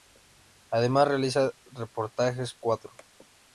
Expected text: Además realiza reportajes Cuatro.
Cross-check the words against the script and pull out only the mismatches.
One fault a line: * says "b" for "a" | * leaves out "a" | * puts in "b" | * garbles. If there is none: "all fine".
all fine